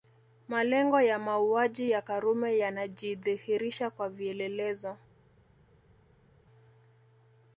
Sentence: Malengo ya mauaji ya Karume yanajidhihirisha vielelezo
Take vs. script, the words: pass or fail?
fail